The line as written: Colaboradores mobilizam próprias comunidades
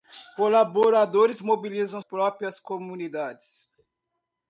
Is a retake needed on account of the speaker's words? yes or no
no